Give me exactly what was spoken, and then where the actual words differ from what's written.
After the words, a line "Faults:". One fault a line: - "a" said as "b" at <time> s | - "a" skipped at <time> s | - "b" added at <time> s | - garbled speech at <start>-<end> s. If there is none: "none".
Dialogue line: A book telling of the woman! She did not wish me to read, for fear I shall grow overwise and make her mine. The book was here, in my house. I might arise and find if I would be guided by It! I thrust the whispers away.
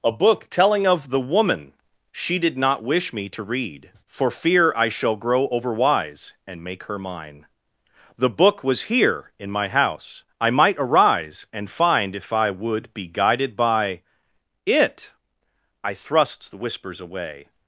A book telling of the woman! She did not wish me to read, for fear I shall grow overwise and make her mine. The book was here, in my house. I might arise and find if I would be guided by It! I thrust the whispers away.
Faults:
none